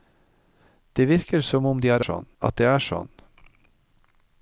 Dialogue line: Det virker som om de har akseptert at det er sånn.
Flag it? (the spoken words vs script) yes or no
yes